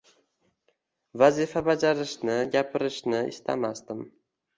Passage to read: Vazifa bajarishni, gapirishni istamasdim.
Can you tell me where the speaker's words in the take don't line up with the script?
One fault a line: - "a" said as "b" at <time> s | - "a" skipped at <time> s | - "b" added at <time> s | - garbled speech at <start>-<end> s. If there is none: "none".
none